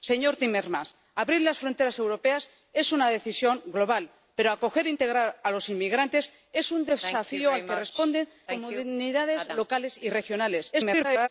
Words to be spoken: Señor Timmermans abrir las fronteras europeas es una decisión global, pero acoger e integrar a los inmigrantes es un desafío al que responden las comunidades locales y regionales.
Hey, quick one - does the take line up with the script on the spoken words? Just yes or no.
no